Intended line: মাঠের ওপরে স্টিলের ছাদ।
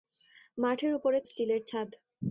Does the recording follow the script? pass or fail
pass